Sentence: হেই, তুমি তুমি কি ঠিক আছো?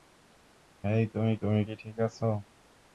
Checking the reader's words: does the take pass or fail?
pass